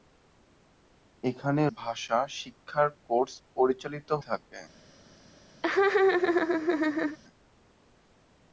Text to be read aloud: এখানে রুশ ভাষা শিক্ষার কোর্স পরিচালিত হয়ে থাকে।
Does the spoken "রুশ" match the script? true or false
false